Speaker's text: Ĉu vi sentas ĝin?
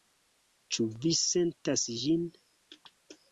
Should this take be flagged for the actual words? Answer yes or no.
no